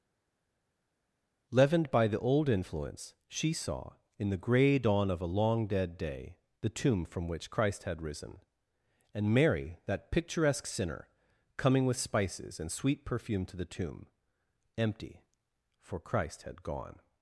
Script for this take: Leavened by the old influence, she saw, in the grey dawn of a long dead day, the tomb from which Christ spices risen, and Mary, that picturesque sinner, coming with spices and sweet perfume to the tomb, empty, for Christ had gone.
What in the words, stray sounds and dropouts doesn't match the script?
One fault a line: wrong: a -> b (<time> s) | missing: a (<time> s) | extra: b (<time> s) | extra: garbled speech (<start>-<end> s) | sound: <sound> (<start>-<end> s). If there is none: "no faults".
wrong: spices -> had (7.8 s)